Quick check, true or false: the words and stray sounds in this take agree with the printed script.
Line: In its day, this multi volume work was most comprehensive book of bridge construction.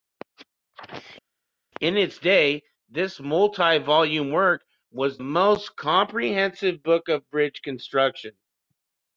true